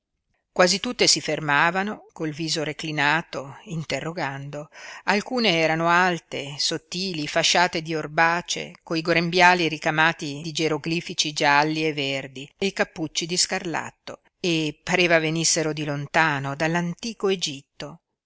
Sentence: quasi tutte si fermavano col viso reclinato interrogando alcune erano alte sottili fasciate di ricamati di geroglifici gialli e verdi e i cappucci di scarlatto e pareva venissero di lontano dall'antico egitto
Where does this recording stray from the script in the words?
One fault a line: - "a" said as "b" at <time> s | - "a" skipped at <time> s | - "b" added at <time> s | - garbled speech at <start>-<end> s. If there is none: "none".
- "orbace coi grembiali" added at 7.9 s